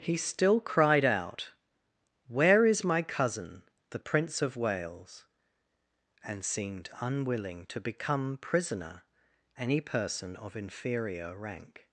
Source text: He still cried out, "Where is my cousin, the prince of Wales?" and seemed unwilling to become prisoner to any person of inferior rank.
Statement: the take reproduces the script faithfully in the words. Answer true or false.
false